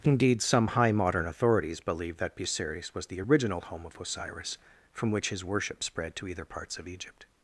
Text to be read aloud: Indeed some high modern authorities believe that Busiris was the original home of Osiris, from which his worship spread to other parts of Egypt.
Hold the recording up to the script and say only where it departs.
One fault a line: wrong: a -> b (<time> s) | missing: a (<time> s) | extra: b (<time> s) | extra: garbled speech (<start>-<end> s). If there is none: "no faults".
wrong: other -> either (6.3 s)